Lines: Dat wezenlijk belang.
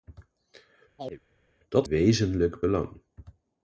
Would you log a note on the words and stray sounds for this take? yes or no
yes